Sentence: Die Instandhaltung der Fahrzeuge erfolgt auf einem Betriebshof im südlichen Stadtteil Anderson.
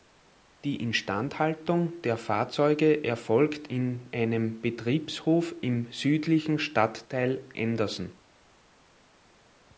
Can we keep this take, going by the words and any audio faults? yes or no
no